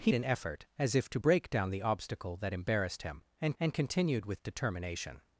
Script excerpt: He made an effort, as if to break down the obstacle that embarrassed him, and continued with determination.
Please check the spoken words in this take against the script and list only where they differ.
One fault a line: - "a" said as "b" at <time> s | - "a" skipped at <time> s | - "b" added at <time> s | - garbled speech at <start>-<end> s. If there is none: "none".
- "made" skipped at 0.1 s
- "and" added at 3.6 s